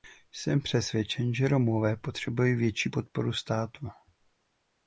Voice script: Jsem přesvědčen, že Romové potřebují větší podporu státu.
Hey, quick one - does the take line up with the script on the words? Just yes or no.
yes